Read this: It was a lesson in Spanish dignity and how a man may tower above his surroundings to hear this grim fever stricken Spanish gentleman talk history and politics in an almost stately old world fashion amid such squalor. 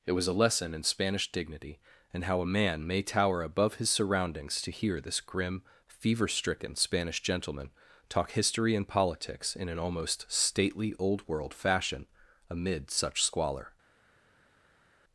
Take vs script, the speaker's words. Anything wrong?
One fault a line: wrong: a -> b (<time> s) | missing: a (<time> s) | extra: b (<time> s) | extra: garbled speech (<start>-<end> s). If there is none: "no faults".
no faults